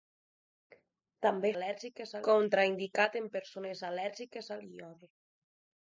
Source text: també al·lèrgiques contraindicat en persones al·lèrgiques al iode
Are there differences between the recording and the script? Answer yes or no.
no